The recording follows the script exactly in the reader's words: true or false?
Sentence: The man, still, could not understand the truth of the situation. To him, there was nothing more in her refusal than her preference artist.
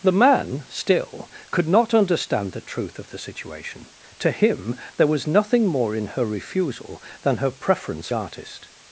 true